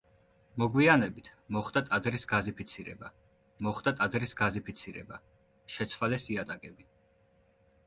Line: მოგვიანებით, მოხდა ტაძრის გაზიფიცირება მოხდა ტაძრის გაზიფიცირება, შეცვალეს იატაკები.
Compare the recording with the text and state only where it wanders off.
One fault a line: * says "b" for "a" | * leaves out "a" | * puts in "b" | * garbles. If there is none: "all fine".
all fine